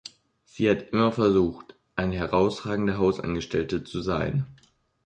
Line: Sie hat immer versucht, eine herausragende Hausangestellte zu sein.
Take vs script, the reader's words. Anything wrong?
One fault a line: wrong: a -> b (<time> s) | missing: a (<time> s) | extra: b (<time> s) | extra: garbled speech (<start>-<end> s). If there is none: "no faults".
no faults